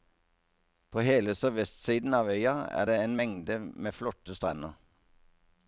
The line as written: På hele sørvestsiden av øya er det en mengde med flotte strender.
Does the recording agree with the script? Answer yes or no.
yes